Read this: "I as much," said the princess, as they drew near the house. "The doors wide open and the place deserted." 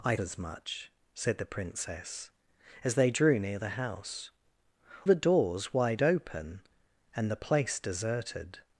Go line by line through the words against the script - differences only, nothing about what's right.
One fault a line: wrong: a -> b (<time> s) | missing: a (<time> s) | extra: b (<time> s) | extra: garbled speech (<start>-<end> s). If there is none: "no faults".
no faults